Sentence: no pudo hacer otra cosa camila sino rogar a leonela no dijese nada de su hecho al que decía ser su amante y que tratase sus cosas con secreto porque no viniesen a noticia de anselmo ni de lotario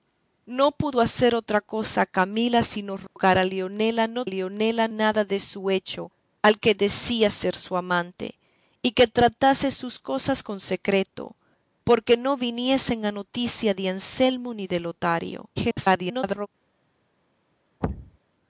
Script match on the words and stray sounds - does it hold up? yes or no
no